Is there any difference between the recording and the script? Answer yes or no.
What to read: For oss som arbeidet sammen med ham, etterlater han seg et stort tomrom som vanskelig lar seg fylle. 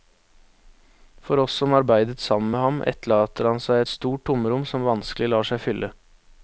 no